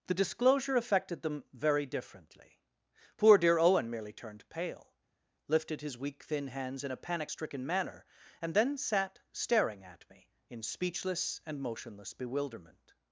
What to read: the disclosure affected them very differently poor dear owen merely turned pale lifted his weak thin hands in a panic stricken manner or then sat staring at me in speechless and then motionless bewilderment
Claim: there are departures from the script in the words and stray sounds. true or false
true